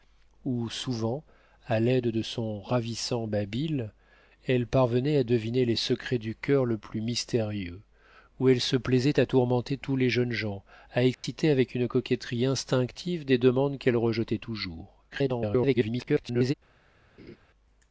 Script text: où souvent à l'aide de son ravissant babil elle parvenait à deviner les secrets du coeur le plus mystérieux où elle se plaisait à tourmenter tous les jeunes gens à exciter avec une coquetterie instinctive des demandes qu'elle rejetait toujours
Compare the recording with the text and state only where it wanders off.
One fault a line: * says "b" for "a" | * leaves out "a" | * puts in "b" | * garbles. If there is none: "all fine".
* garbles